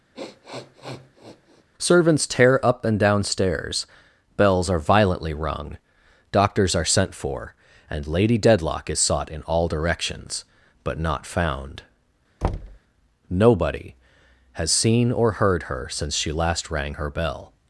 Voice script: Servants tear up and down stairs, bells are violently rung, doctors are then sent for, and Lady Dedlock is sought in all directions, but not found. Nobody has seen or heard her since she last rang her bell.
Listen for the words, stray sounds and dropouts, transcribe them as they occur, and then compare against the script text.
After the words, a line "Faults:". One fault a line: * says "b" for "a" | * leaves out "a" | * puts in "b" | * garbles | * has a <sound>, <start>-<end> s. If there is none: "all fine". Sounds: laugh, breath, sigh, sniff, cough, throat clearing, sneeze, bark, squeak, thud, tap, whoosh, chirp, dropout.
Servants tear up and down stairs, bells are violently rung, doctors are sent for, and Lady Dedlock is sought in all directions, but not found. Nobody has seen or heard her since she last rang her bell.
Faults:
* has a sniff, 0.1-1.6 s
* leaves out "then"
* has a thud, 12.4-12.8 s